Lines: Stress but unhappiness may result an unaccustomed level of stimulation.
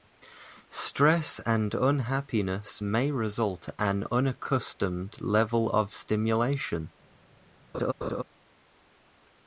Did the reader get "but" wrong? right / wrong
wrong